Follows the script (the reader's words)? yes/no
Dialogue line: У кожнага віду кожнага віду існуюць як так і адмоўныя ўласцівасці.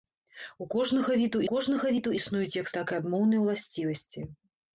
yes